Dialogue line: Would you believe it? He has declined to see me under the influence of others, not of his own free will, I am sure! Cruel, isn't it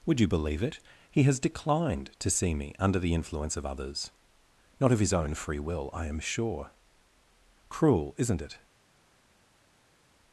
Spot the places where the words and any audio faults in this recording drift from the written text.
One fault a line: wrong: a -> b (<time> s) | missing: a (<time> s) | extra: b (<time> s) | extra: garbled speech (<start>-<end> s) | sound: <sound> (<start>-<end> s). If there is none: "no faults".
no faults